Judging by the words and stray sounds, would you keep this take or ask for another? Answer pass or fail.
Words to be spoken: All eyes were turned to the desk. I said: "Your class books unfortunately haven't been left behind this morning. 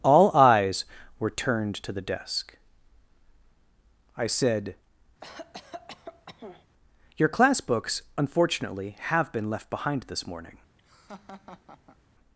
fail